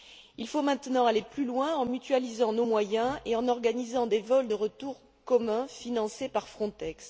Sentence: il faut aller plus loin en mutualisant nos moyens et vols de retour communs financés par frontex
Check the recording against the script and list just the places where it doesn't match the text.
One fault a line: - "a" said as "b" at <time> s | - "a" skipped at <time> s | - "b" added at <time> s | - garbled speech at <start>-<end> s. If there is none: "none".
- "maintenant" added at 0.6 s
- "en organisant des" added at 3.4 s